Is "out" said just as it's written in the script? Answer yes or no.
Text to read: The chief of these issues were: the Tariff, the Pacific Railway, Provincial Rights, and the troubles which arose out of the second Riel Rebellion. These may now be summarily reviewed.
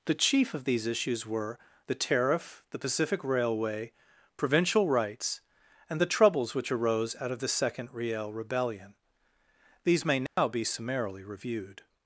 yes